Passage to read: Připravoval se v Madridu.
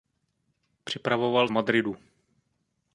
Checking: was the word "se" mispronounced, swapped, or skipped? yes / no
yes